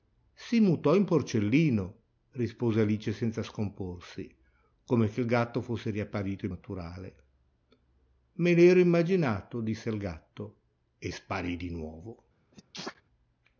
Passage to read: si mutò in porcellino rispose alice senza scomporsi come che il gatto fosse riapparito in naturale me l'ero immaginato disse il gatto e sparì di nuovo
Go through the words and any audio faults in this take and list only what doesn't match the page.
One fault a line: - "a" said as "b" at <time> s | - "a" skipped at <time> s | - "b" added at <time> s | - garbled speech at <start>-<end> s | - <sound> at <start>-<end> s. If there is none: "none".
- sneeze at 12.5-13.0 s